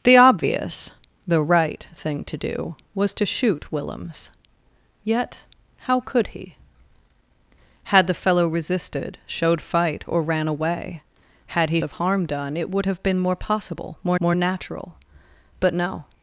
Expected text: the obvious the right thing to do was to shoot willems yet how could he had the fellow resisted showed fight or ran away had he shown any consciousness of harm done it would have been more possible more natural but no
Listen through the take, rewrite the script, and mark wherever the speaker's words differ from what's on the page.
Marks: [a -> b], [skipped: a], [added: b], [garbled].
the obvious the right thing to do was to shoot willems yet how could he had the fellow resisted showed fight or ran away had he [skipped: shown any consciousness] of harm done it would have been more possible more [added: more] natural but no